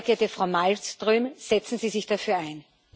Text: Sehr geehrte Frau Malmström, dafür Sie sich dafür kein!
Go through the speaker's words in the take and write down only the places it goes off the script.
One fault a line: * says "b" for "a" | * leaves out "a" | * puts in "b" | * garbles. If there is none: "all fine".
* says "setzen" for "dafür"
* says "ein" for "kein"